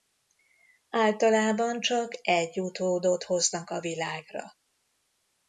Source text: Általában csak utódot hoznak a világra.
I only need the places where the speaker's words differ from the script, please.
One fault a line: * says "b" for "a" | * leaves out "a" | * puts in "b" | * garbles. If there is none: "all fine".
* puts in "egy"